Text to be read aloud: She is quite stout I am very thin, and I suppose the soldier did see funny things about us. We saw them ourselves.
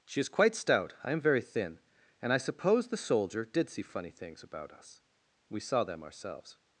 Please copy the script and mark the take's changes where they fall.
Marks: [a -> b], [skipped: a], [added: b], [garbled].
She is quite stout I am very thin, and I suppose the soldier did see funny things about us. We saw them ourselves.